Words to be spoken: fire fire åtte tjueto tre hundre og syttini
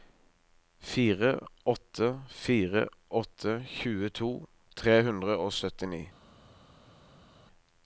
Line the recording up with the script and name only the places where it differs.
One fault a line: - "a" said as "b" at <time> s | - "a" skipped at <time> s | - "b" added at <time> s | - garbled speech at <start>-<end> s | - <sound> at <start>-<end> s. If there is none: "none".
- "åtte" added at 1.7 s